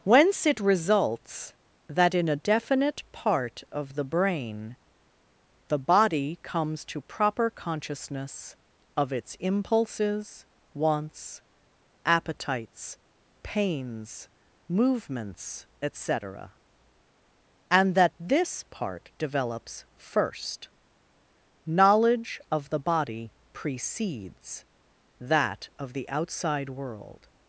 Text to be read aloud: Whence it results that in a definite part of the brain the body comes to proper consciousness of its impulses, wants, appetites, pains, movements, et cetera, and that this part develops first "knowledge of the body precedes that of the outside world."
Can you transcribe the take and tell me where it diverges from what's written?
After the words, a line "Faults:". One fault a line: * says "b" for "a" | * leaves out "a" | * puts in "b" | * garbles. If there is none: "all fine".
Whence it results that in a definite part of the brain the body comes to proper consciousness of its impulses, wants, appetites, pains, movements, et cetera, and that this part develops first "knowledge of the body precedes that of the outside world."
Faults:
all fine